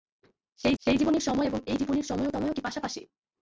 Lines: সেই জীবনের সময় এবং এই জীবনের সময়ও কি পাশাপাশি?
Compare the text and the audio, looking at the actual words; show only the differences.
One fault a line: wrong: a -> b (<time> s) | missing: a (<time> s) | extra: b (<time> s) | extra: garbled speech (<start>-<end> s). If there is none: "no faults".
extra: সেই (0.8 s)
extra: সময়ও (2.3 s)